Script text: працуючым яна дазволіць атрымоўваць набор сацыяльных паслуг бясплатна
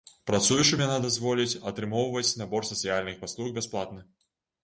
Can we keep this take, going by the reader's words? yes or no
yes